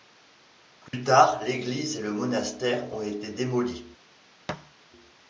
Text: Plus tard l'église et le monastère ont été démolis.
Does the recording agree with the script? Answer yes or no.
yes